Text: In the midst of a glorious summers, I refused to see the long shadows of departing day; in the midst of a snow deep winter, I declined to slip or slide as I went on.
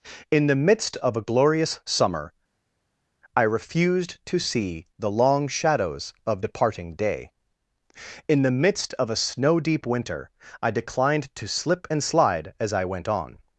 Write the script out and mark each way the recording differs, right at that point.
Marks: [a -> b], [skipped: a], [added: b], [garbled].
In the midst of a glorious [summers, -> summer] I refused to see the long shadows of departing day; in the midst of a snow deep winter, I declined to slip [or -> and] slide as I went on.